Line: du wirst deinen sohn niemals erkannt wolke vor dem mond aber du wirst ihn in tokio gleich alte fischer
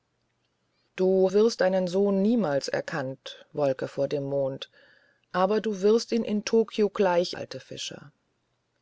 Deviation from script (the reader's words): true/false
false